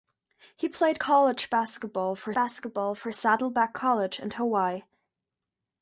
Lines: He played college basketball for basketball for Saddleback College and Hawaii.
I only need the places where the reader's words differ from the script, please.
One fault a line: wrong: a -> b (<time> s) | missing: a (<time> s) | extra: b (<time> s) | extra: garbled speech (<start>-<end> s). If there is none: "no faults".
no faults